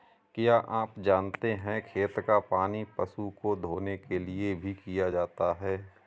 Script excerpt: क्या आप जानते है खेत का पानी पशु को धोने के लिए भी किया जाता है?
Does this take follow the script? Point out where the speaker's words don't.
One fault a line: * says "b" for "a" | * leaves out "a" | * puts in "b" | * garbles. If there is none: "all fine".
all fine